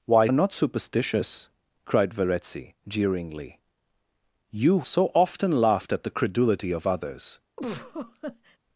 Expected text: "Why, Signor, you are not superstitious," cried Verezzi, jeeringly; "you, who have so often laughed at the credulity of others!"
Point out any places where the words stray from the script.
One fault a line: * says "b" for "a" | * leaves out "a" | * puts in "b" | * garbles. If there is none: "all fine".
* leaves out "Signor you"
* leaves out "who have"